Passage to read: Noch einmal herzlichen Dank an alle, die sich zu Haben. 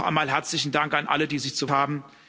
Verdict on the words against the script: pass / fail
pass